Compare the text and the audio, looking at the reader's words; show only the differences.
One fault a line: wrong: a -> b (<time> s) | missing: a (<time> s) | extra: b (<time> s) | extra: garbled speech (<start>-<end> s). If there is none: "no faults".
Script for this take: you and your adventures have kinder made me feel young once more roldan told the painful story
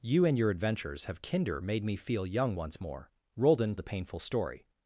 missing: told (3.7 s)